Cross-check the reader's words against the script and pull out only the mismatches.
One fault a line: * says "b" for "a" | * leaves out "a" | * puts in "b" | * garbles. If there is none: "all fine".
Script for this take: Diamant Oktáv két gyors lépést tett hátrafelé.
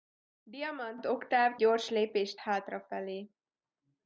* leaves out "két"
* leaves out "tett"